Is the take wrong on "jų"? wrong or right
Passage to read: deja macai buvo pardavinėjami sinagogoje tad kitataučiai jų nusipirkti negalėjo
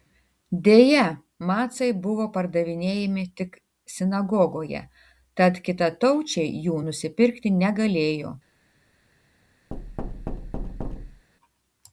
right